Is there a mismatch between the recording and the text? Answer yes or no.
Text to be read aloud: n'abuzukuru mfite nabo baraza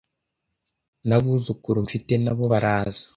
no